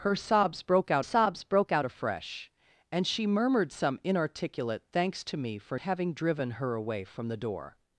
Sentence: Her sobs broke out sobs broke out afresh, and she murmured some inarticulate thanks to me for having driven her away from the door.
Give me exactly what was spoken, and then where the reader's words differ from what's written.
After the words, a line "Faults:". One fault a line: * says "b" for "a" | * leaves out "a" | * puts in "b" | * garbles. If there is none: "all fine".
Her sobs broke out sobs broke out afresh, and she murmured some inarticulate thanks to me for having driven her away from the door.
Faults:
all fine